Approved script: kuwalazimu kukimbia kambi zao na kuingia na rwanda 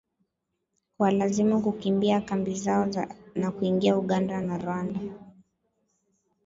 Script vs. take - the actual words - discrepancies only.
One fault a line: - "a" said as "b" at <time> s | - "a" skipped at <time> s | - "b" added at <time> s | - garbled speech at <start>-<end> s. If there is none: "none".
- "uganda" added at 4.0 s